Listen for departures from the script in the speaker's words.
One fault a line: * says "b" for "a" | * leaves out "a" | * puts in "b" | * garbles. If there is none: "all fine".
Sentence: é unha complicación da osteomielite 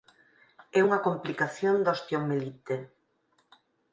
all fine